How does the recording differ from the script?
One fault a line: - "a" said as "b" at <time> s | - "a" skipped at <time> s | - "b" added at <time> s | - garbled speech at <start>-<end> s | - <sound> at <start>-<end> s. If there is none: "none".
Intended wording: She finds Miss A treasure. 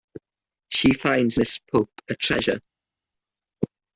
- "Pope" added at 1.7 s